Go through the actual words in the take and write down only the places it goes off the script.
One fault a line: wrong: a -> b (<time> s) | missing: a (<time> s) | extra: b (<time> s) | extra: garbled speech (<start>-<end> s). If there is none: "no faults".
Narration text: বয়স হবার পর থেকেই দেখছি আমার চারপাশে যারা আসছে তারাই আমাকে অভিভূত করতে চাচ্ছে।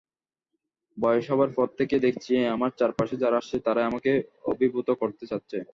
no faults